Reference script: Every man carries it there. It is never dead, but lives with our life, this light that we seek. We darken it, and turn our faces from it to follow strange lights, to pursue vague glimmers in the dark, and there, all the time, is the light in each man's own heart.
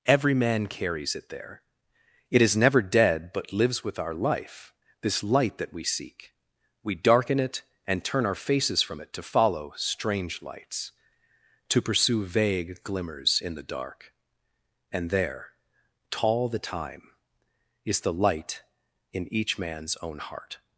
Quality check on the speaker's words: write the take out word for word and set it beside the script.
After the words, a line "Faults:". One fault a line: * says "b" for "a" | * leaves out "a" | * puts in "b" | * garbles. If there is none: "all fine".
Every man carries it there. It is never dead, but lives with our life, this light that we seek. We darken it, and turn our faces from it to follow strange lights, to pursue vague glimmers in the dark, and there, tall the time, is the light in each man's own heart.
Faults:
* says "tall" for "all"